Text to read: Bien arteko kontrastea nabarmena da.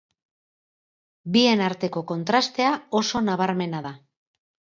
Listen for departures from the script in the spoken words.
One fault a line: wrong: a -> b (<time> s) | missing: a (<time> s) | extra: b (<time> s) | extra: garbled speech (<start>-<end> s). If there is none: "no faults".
extra: oso (3.0 s)